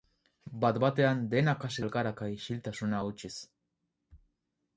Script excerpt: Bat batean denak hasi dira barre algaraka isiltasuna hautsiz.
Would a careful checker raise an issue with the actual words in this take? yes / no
yes